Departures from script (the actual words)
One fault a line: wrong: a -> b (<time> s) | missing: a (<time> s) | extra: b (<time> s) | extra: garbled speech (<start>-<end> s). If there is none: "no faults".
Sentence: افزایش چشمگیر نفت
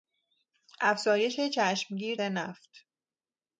no faults